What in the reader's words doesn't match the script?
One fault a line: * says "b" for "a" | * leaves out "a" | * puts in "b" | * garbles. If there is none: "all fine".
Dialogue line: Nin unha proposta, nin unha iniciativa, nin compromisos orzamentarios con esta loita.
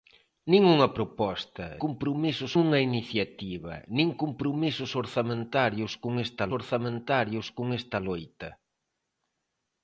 * says "compromisos" for "nin"
* puts in "orzamentarios con esta"